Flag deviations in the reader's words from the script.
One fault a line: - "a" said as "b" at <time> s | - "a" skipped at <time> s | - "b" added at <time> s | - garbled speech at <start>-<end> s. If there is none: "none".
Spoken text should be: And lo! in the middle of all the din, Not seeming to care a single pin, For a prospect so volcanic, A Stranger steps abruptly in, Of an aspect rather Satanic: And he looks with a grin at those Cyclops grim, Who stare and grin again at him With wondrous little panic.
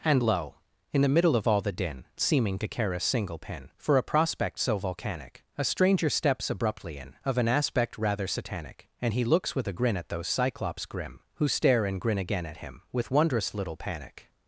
- "Not" skipped at 2.0 s